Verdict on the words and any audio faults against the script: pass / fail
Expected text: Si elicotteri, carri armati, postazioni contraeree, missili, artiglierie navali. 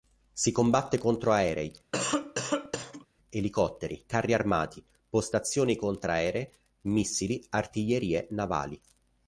fail